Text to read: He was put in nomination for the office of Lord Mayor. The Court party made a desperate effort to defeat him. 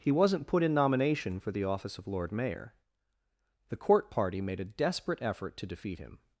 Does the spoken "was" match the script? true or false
false